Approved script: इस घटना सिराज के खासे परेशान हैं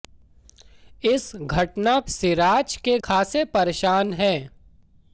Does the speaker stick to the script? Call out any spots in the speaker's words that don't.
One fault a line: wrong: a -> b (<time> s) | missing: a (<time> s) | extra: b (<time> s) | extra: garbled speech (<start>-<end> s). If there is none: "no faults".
no faults